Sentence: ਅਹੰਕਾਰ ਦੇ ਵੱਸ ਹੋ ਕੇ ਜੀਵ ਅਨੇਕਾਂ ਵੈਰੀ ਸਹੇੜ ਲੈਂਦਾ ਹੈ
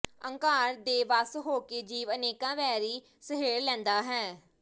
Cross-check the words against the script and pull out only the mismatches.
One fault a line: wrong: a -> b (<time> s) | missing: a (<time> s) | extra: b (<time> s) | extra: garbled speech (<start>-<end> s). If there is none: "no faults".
no faults